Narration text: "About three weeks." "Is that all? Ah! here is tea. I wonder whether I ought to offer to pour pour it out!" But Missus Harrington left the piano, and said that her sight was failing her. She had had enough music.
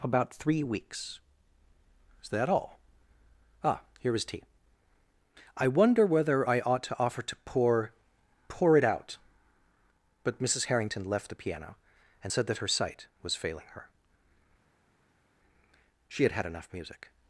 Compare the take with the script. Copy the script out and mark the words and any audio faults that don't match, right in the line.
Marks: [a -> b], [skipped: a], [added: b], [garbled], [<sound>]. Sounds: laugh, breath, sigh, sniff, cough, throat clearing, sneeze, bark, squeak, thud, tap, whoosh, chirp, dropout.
"About three weeks." "Is that all? Ah! here is tea. I wonder whether I ought to offer to pour pour it out!" But Missus Harrington left the piano, and said that her sight was failing her. She had had enough music.